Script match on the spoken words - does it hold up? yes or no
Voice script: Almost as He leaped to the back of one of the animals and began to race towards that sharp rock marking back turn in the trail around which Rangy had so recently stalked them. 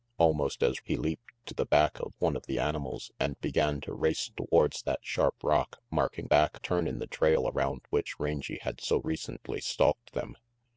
yes